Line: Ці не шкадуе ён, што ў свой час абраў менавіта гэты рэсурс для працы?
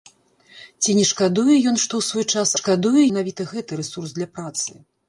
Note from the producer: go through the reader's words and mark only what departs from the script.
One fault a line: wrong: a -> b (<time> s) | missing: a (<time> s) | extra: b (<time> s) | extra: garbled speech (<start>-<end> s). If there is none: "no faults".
wrong: абраў -> шкадуе (2.6 s)